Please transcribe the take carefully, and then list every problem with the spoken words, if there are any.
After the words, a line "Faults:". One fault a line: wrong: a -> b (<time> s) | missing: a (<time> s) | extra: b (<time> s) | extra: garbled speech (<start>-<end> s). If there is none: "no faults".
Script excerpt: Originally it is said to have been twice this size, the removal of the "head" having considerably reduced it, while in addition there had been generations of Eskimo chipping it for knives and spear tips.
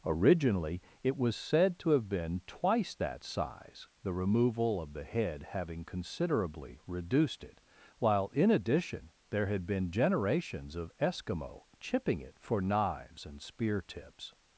Originally it was said to have been twice that size, the removal of the "head" having considerably reduced it, while in addition there had been generations of Eskimo chipping it for knives and spear tips.
Faults:
wrong: is -> was (1.1 s)
wrong: this -> that (3.0 s)